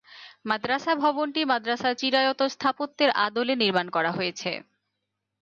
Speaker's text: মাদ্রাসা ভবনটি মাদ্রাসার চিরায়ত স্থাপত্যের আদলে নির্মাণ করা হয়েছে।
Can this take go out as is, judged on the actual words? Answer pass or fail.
pass